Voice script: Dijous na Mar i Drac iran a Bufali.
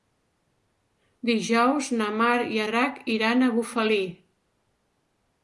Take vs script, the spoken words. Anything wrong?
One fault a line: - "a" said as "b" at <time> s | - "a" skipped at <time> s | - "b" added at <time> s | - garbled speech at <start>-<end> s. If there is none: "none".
none